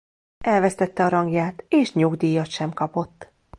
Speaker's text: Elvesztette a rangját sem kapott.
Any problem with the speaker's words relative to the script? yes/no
yes